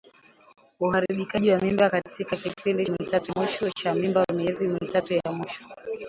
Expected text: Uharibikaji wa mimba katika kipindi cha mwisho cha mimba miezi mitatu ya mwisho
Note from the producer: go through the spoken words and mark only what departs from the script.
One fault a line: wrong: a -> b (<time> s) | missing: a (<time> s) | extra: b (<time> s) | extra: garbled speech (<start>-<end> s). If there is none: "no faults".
wrong: cha -> mitatu (2.9 s)